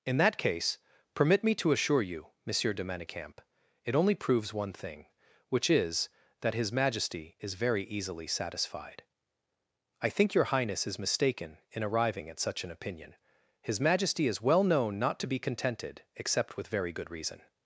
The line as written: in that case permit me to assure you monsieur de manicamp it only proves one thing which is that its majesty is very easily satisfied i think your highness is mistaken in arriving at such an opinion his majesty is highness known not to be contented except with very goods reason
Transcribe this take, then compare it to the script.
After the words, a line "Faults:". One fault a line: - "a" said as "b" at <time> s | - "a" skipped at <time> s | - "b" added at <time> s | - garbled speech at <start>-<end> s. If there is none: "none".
in that case permit me to assure you monsieur de manicamp it only proves one thing which is that his majesty is very easily satisfied i think your highness is mistaken in arriving at such an opinion his majesty is well known not to be contented except with very good reason
Faults:
- "its" said as "his" at 6.5 s
- "highness" said as "well" at 14.4 s
- "goods" said as "good" at 16.9 s